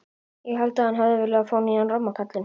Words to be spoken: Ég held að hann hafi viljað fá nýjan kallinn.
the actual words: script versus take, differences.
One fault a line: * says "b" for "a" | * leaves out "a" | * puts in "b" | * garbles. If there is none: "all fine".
* puts in "ramma"